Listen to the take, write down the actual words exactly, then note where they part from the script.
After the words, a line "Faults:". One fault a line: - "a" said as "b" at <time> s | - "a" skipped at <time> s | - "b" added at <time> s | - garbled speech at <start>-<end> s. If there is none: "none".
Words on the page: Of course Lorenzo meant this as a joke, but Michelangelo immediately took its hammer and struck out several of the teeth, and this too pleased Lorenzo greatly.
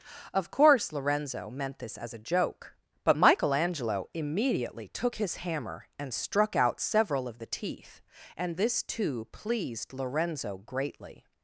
Of course Lorenzo meant this as a joke, but Michelangelo immediately took his hammer and struck out several of the teeth, and this too pleased Lorenzo greatly.
Faults:
- "its" said as "his" at 5.2 s